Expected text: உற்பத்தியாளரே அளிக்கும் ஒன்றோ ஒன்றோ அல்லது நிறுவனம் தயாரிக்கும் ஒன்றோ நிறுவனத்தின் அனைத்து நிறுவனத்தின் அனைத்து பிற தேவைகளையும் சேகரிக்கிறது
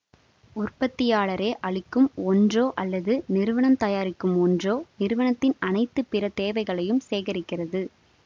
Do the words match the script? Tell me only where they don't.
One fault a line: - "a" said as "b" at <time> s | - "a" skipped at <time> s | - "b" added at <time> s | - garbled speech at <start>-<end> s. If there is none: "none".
- "ஒன்றோ" skipped at 2.6 s
- "நிறுவனத்தின் அனைத்து" skipped at 6.0 s